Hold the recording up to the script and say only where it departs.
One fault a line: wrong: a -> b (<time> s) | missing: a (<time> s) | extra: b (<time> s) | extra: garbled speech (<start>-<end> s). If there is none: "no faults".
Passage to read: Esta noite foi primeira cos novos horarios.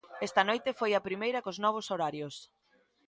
extra: a (0.9 s)